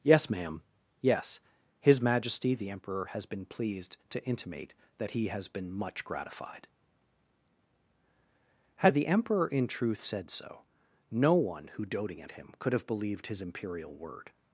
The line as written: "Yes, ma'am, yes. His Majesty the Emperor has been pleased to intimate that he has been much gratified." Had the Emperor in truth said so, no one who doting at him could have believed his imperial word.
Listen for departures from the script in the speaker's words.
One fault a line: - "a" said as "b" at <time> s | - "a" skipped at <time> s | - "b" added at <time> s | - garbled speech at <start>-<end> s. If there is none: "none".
none